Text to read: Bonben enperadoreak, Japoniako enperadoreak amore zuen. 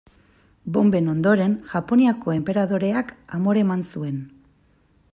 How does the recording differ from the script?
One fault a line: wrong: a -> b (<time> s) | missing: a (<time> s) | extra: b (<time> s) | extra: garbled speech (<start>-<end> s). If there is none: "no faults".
wrong: enperadoreak -> ondoren (1.1 s)
extra: eman (3.7 s)